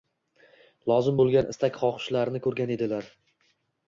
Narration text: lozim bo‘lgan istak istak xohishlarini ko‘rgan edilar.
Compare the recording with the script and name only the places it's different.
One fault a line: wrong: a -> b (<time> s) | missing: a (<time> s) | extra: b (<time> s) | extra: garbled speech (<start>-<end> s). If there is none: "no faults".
missing: istak (1.8 s)